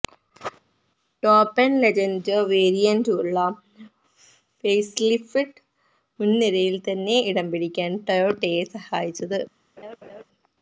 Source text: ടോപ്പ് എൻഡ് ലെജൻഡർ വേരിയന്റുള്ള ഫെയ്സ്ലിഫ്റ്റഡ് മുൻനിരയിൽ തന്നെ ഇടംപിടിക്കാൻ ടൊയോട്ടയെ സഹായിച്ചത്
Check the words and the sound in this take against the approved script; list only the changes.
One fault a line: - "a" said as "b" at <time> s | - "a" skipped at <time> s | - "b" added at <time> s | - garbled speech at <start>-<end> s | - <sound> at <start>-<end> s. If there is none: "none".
- laugh at 9.8-10.2 s